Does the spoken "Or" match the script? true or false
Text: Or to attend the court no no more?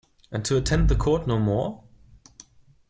false